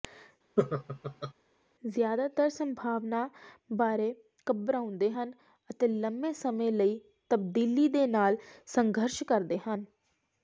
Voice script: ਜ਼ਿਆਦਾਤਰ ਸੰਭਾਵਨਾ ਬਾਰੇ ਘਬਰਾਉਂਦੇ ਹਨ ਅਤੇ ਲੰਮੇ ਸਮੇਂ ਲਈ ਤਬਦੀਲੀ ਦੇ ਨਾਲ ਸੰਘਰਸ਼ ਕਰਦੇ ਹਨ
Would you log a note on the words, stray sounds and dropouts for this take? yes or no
yes